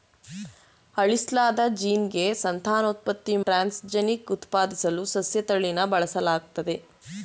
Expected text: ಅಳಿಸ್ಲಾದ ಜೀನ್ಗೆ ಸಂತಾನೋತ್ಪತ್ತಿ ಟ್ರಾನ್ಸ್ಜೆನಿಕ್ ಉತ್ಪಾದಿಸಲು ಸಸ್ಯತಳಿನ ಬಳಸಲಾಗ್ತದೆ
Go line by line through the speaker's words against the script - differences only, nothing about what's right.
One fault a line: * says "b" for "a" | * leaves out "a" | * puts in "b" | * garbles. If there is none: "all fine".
all fine